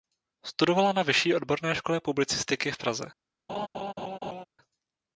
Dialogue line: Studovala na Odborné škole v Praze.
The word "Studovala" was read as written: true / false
true